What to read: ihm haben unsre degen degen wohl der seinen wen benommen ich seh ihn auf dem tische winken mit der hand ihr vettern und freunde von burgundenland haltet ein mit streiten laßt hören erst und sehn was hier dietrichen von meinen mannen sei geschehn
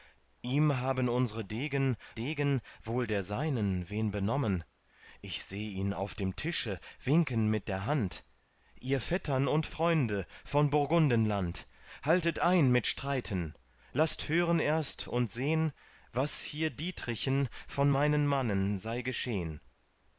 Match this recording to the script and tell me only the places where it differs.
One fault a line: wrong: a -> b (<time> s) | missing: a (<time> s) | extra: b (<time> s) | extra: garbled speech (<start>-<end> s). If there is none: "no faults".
no faults